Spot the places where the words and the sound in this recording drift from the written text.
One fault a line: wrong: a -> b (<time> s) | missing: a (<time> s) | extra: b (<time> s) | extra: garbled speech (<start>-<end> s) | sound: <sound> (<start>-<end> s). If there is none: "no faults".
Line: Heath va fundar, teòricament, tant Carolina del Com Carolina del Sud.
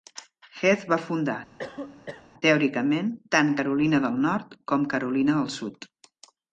sound: cough (1.6-2.3 s)
extra: Nord (4.3 s)